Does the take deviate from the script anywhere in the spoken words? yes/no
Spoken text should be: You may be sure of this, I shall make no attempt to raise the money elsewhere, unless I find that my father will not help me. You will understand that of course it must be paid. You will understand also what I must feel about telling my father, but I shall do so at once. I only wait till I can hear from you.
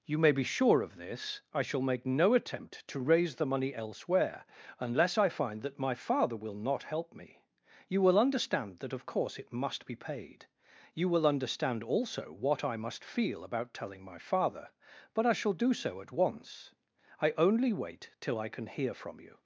no